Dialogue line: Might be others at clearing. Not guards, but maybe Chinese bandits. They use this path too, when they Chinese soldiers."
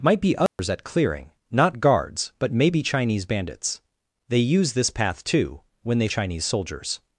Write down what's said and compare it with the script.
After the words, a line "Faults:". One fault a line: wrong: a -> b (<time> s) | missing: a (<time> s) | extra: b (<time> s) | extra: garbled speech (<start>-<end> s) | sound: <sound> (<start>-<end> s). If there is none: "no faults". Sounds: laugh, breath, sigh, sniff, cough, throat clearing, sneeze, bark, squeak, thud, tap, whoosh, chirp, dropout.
Might be others at clearing. Not guards, but maybe Chinese bandits. They use this path too, when they Chinese soldiers."
Faults:
sound: dropout (0.5-0.6 s)